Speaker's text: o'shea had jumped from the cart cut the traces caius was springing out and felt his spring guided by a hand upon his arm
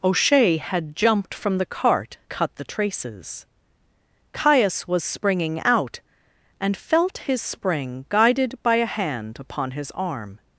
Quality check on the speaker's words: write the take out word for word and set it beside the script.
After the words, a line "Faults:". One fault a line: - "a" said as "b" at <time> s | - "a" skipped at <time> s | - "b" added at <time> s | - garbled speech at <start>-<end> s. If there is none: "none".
o'shea had jumped from the cart cut the traces caius was springing out and felt his spring guided by a hand upon his arm
Faults:
none